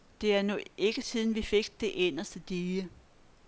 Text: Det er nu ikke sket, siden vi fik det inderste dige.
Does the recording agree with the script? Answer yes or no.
no